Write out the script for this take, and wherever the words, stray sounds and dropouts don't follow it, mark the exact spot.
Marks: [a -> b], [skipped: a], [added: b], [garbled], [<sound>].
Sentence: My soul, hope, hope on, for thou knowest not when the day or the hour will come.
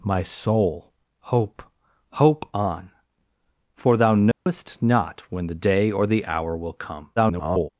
My soul, hope, hope on, for thou knowest [dropout] not when the day or the hour will come. [garbled]